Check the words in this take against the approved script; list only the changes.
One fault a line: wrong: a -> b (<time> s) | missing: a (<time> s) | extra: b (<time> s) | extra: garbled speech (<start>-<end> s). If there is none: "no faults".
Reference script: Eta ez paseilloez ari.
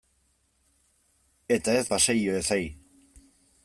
no faults